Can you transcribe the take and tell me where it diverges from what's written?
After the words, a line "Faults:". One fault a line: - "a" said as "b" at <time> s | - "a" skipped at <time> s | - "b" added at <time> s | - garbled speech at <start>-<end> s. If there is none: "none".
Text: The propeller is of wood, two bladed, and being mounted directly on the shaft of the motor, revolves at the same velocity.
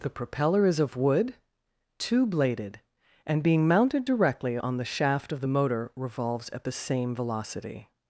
The propeller is of wood, two bladed, and being mounted directly on the shaft of the motor, revolves at the same velocity.
Faults:
none